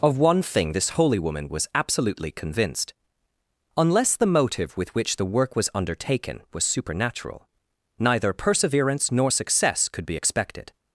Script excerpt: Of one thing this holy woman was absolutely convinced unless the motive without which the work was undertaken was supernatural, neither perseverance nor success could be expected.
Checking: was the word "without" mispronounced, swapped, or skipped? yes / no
yes